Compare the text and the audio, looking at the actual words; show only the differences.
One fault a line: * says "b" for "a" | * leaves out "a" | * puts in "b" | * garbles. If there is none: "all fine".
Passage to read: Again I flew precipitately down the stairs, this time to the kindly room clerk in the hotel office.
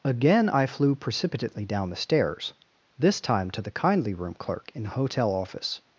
all fine